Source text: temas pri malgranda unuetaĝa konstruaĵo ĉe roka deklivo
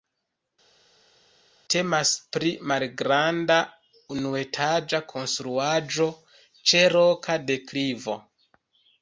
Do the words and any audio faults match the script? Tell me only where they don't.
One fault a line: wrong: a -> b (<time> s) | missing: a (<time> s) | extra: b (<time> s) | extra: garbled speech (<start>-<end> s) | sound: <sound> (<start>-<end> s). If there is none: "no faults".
no faults